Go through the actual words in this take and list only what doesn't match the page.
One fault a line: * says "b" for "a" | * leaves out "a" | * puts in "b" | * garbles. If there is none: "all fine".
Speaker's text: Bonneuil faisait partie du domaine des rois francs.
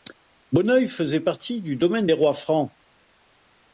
all fine